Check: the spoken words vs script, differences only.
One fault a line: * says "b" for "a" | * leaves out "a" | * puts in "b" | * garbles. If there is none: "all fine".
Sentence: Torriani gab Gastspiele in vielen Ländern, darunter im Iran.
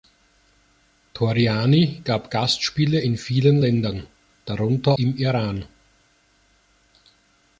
all fine